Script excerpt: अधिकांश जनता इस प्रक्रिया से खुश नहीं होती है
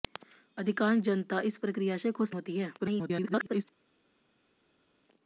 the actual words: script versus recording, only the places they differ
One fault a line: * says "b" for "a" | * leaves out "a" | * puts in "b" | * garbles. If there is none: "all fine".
* leaves out "नहीं"
* garbles